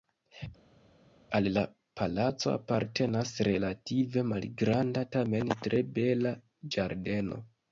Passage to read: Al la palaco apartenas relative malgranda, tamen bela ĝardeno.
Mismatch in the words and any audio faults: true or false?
true